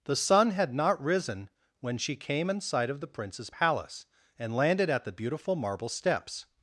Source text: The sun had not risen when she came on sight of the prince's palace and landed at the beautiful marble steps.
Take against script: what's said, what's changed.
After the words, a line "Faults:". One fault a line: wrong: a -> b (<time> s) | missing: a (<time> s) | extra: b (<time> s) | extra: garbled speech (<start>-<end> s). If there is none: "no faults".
The sun had not risen when she came in sight of the prince's palace and landed at the beautiful marble steps.
Faults:
wrong: on -> in (2.5 s)